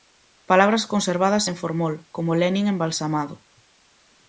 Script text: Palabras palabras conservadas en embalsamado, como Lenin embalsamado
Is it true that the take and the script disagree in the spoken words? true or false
true